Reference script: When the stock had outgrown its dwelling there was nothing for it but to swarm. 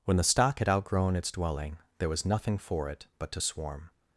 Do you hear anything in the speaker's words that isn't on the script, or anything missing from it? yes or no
no